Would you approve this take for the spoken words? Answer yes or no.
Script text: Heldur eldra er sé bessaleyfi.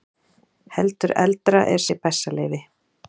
yes